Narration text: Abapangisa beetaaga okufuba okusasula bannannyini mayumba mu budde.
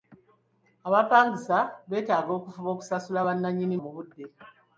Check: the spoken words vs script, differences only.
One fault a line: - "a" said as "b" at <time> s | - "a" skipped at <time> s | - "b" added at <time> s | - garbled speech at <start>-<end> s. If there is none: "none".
- "mayumba" skipped at 3.8 s